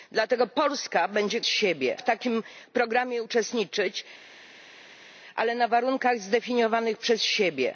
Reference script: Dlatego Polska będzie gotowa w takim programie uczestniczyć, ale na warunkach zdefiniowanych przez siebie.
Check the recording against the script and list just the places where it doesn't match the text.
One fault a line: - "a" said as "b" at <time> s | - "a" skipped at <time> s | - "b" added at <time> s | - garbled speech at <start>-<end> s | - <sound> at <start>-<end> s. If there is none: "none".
- "gotowa" said as "siebie" at 1.5 s